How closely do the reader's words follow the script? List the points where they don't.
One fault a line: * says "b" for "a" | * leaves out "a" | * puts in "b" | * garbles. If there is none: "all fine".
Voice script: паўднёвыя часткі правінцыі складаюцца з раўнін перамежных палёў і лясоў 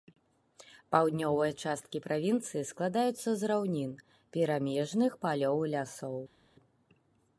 all fine